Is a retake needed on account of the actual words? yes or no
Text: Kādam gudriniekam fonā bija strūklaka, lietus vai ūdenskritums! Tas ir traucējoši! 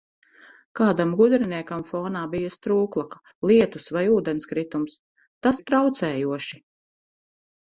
no